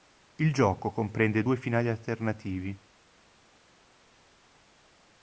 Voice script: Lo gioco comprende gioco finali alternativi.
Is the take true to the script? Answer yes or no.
no